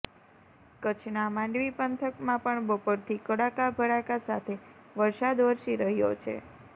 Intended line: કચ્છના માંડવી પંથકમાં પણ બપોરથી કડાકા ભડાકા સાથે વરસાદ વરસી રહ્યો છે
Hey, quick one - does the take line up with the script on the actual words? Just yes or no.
yes